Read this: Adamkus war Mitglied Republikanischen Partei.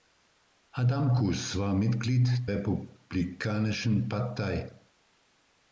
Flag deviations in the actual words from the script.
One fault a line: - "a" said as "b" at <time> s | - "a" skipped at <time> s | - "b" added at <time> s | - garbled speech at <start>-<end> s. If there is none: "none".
none